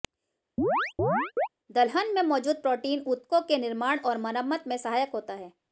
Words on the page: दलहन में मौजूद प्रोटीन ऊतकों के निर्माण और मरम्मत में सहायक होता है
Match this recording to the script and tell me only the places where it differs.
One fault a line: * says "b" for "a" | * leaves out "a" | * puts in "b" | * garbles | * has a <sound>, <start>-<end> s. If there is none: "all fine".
* has a chirp, 0.6-1.5 s